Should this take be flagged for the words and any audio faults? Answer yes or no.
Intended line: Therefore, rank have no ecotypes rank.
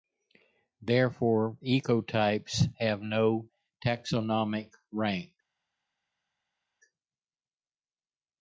yes